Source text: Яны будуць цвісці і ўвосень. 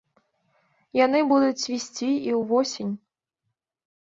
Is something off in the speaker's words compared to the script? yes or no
no